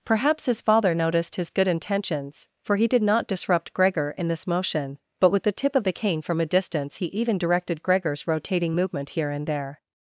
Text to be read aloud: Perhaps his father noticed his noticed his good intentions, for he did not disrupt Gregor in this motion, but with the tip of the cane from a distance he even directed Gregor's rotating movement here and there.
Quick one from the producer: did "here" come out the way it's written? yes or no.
yes